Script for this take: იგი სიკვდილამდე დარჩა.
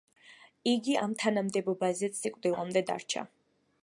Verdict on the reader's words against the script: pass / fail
fail